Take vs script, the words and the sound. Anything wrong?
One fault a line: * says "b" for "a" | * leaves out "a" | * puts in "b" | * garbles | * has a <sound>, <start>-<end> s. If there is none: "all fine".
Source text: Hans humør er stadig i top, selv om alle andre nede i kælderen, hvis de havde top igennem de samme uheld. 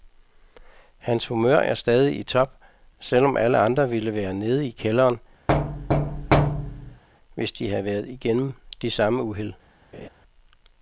* puts in "ville være"
* has a thud, 5.5-7.0 s
* says "været" for "top"
* has a laugh, 9.9-10.1 s